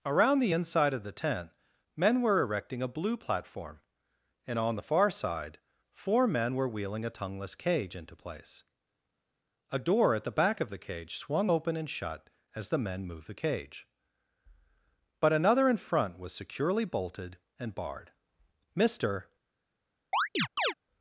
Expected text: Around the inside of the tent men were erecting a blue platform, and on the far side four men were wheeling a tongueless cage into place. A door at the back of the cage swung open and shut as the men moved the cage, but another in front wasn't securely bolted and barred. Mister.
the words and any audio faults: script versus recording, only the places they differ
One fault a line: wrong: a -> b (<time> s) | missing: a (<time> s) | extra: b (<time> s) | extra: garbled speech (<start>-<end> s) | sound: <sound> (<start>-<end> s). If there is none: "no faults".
wrong: wasn't -> was (16.2 s)
sound: chirp (20.1-20.7 s)